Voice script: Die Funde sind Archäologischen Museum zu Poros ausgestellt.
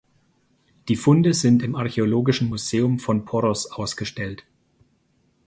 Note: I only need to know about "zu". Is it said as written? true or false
false